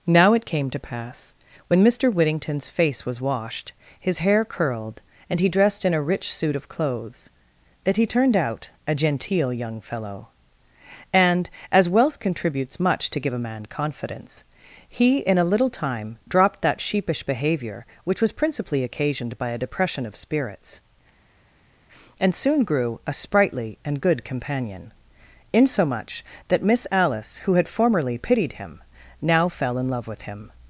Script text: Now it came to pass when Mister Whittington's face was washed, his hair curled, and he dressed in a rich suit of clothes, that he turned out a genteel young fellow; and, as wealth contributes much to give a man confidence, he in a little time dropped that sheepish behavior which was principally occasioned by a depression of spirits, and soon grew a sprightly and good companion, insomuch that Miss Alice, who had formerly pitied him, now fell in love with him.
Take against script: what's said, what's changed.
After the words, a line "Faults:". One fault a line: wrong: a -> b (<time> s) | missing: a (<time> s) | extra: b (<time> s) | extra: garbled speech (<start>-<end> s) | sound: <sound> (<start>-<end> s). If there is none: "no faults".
Now it came to pass when Mister Whittington's face was washed, his hair curled, and he dressed in a rich suit of clothes, that he turned out a genteel young fellow; and, as wealth contributes much to give a man confidence, he in a little time dropped that sheepish behavior which was principally occasioned by a depression of spirits, and soon grew a sprightly and good companion, insomuch that Miss Alice, who had formerly pitied him, now fell in love with him.
Faults:
no faults